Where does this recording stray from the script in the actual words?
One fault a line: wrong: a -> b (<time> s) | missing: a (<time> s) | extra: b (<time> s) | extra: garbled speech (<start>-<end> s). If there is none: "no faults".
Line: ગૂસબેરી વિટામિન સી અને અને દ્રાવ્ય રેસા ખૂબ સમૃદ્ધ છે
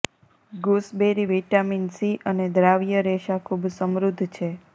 missing: અને (2.5 s)